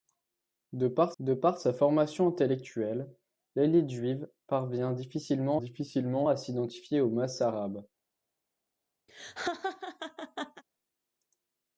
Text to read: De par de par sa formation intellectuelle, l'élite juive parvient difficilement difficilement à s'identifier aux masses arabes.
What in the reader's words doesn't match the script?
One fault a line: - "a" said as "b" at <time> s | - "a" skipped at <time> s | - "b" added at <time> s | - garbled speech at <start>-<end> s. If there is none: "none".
none